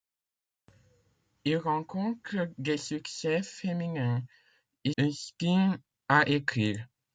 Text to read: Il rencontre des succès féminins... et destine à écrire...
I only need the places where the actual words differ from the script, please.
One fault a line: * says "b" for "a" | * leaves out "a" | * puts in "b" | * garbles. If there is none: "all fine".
all fine